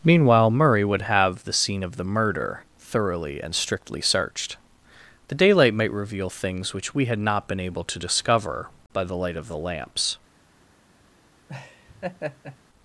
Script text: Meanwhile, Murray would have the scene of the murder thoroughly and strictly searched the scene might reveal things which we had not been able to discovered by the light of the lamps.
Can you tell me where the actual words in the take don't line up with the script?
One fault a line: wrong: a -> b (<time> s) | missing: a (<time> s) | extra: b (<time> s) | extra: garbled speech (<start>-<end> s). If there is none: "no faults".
wrong: scene -> daylight (5.3 s)
wrong: discovered -> discover (8.0 s)